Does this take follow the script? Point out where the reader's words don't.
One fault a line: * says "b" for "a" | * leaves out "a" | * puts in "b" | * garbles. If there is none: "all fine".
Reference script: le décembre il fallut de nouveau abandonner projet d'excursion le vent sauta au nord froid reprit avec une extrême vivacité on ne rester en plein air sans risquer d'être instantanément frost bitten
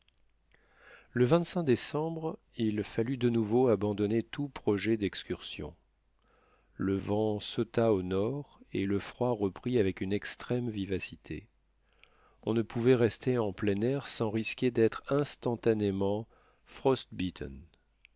* puts in "tout"
* puts in "et le"
* puts in "pouvait"